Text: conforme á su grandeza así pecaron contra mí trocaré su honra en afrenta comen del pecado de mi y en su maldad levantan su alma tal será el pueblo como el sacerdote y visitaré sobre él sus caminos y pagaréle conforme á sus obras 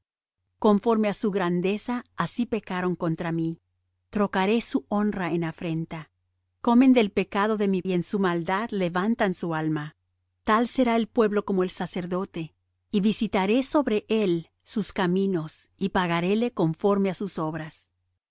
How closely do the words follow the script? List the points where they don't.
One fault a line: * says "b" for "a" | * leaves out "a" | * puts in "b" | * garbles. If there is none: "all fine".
all fine